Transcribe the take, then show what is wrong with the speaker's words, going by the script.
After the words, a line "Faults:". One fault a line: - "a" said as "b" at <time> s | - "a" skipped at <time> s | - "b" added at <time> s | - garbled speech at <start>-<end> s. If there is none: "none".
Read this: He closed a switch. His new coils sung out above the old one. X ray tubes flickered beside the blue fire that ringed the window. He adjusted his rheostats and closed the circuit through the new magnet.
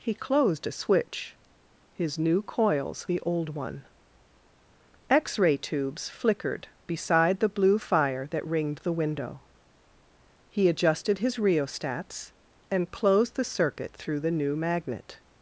He closed a switch. His new coils the old one. X ray tubes flickered beside the blue fire that ringed the window. He adjusted his rheostats and closed the circuit through the new magnet.
Faults:
- "sung out above" skipped at 3.0 s